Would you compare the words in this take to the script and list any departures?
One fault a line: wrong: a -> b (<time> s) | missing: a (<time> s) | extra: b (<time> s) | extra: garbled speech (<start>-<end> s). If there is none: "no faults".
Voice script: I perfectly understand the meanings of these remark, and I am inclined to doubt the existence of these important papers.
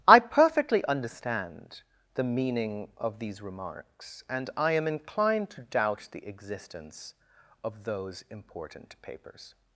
wrong: meanings -> meaning (2.2 s)
wrong: remark -> remarks (3.4 s)
wrong: these -> those (7.8 s)